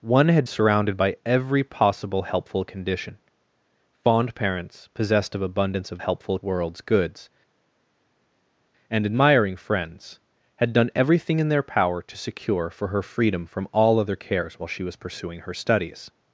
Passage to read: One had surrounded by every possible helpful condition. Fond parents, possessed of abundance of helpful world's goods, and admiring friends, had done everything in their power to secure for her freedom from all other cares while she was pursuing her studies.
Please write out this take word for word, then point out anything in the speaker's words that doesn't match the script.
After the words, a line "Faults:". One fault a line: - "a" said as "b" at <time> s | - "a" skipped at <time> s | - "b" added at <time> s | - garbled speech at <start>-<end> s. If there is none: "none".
One had surrounded by every possible helpful condition. Fond parents, possessed of abundance of helpful world's goods, and admiring friends, had done everything in their power to secure for her freedom from all other cares while she was pursuing her studies.
Faults:
none